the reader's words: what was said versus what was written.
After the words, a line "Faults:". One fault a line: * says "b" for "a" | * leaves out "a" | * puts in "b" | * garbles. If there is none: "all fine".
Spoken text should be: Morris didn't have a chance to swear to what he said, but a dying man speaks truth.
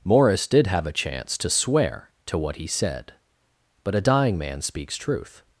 Morris did have a chance to swear to what he said, but a dying man speaks truth.
Faults:
* says "did" for "didn't"